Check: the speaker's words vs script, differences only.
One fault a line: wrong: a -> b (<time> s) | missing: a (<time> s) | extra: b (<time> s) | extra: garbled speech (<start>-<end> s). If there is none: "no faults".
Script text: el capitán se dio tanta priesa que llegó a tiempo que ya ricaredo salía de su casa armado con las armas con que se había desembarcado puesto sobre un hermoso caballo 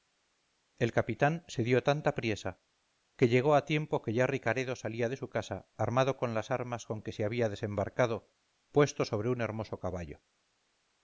no faults